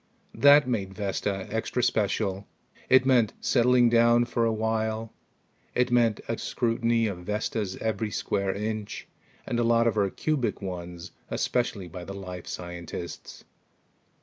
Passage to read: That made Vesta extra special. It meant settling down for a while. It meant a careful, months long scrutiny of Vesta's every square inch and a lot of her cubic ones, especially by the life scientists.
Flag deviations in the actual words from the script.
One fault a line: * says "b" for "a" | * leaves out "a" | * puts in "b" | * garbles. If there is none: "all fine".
* leaves out "careful months long"